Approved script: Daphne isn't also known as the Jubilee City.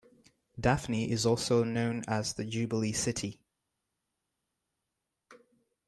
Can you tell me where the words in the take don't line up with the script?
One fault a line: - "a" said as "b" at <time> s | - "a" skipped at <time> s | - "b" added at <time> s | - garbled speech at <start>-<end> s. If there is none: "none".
- "isn't" said as "is" at 1.1 s